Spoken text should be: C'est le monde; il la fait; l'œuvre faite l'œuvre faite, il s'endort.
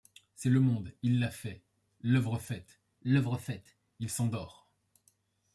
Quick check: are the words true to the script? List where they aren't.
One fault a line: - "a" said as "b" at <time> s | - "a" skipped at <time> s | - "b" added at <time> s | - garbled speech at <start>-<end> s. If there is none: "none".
none